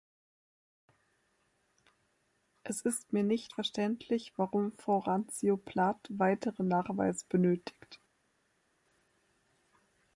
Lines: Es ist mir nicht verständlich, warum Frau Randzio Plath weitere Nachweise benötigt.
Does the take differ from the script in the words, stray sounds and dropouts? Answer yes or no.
no